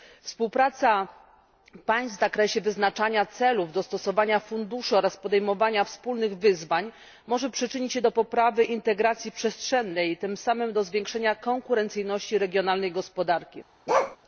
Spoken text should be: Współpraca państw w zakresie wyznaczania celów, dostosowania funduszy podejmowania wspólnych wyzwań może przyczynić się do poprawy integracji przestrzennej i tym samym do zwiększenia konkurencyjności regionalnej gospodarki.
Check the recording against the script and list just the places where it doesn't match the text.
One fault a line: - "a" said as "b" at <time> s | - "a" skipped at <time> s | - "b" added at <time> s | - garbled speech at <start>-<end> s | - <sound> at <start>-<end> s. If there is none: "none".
- "oraz" added at 5.0 s
- bark at 13.9-14.2 s